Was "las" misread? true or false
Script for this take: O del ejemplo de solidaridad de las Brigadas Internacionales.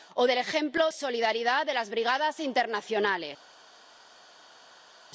false